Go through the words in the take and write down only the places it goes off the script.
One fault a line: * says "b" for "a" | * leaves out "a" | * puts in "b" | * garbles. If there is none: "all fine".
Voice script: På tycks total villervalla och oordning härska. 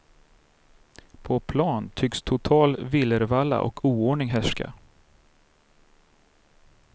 * puts in "plan"